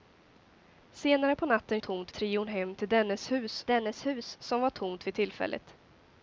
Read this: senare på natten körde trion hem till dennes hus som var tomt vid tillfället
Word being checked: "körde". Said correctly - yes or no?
no